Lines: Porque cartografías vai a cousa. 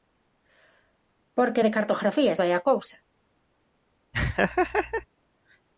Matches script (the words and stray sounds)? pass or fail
fail